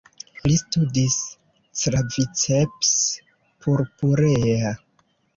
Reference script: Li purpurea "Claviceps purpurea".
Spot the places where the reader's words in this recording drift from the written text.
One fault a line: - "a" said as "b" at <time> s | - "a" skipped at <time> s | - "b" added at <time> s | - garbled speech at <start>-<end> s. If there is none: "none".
- "purpurea" said as "studis" at 0.6 s